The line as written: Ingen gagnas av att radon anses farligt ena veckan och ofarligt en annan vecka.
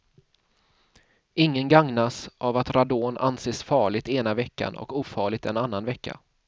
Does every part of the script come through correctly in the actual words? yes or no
yes